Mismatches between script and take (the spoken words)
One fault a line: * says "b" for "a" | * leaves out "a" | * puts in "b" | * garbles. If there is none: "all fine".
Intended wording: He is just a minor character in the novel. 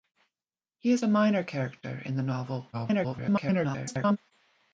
* leaves out "just"
* garbles